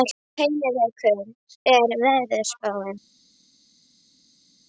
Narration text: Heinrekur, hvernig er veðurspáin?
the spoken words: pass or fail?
fail